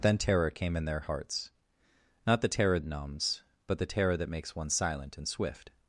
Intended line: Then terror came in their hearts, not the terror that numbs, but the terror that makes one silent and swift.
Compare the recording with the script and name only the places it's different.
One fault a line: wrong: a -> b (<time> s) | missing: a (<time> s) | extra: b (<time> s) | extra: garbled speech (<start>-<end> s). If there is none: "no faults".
missing: that (2.8 s)